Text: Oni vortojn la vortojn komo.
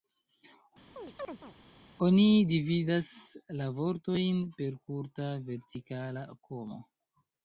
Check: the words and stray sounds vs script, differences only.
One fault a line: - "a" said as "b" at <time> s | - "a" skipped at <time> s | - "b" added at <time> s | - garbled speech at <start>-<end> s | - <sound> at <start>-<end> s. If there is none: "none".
- chirp at 1.0-1.5 s
- "vortojn" said as "dividas" at 2.5 s
- "per kurta vertikala" added at 4.6 s